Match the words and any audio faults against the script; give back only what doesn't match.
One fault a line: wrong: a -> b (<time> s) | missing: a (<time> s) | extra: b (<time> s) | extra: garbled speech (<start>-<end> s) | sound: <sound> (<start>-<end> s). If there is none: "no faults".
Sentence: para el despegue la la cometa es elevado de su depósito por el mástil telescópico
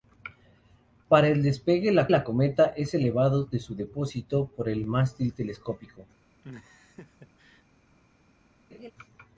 sound: laugh (6.4-7.6 s)
sound: laugh (8.7-8.9 s)